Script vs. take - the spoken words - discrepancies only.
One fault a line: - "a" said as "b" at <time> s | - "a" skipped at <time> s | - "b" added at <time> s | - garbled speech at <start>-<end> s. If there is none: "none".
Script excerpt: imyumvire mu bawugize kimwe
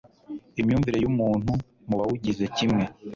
- "y'umuntu" added at 1.0 s